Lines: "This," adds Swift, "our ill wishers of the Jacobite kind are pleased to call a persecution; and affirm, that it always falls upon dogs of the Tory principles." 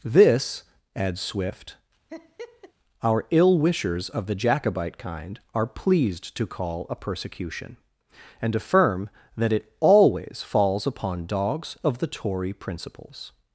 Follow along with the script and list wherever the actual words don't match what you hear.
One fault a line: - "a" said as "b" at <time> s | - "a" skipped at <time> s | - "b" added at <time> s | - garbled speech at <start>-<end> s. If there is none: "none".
none